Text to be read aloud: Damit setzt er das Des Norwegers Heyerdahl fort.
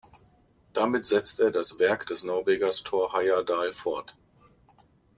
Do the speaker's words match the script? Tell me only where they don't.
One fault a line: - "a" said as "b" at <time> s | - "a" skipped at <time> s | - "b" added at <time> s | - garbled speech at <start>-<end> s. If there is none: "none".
- "Werk" added at 1.8 s
- "Thor" added at 2.8 s